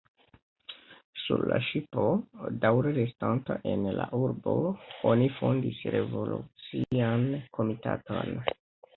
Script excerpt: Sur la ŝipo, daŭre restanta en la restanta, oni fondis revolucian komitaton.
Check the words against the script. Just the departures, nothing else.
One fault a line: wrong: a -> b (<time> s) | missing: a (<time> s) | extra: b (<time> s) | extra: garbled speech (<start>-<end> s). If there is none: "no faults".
wrong: restanta -> urbo (4.2 s)